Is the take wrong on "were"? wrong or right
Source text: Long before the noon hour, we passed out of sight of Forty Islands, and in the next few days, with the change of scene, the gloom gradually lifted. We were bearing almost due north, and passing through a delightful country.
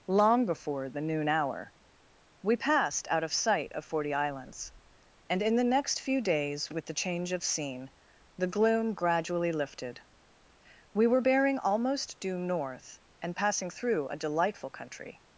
right